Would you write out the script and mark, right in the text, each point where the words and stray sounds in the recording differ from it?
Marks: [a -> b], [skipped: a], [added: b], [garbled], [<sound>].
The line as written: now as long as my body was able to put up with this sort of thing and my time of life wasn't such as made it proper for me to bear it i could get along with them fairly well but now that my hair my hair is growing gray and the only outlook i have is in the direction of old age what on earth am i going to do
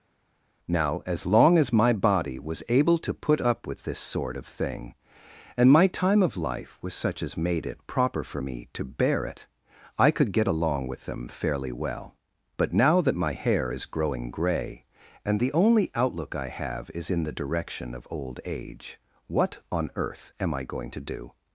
now as long as my body was able to put up with this sort of thing and my time of life [wasn't -> was] such as made it proper for me to bear it i could get along with them fairly well but now that my hair [skipped: my hair] is growing gray and the only outlook i have is in the direction of old age what on earth am i going to do